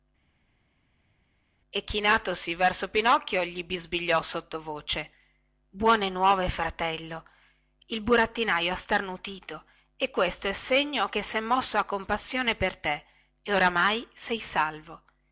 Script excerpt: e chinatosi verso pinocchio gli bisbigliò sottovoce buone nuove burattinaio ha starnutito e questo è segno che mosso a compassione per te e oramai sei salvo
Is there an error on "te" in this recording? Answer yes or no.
no